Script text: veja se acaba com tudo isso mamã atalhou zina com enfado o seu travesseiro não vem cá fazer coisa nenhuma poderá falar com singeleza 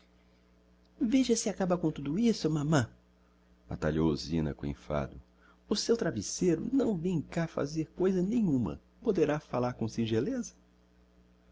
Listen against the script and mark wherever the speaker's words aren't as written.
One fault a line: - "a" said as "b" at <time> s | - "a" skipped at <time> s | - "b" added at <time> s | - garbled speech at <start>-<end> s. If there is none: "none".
none